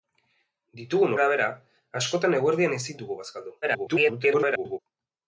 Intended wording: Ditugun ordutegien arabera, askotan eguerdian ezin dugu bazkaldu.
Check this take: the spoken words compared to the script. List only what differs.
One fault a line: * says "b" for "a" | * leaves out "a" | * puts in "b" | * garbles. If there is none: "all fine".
* leaves out "ordutegien"
* garbles